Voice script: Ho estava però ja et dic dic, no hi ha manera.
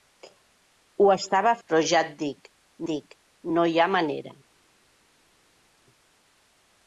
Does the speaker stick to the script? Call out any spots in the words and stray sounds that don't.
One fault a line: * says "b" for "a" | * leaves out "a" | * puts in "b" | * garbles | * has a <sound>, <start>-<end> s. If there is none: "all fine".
all fine